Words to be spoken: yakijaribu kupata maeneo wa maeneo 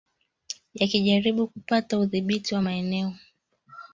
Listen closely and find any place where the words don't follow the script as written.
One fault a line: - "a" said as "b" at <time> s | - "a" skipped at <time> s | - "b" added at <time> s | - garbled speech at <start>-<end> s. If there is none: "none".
- "maeneo" said as "udhibiti" at 2.0 s